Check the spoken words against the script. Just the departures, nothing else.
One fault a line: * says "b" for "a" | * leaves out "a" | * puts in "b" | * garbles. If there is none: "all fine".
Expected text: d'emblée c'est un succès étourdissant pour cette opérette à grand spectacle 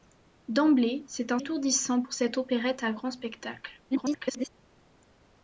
* leaves out "succès"
* garbles